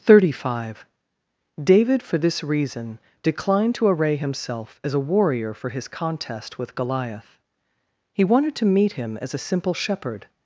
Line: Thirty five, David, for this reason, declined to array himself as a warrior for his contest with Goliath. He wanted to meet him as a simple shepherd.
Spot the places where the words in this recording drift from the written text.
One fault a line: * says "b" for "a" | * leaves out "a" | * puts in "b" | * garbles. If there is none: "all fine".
all fine